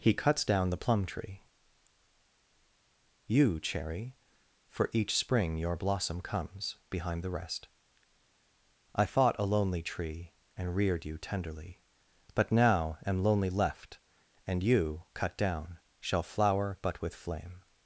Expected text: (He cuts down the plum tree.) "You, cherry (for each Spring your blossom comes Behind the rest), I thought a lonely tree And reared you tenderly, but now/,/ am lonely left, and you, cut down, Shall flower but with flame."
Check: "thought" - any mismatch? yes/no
yes